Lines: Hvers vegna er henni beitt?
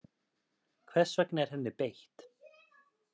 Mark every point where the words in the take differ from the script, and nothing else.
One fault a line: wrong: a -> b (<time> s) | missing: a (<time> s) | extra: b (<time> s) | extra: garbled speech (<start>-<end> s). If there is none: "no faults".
no faults